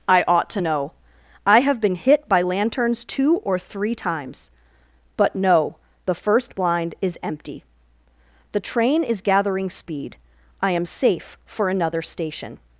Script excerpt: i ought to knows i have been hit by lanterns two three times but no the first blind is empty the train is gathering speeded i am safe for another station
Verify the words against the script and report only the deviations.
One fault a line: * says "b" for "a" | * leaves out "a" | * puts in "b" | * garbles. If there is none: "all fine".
* says "know" for "knows"
* puts in "or"
* says "speed" for "speeded"